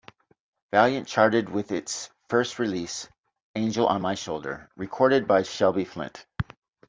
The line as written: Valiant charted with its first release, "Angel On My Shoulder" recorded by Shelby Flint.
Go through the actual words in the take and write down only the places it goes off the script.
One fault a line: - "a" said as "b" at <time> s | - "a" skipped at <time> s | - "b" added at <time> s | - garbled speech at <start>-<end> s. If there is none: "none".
none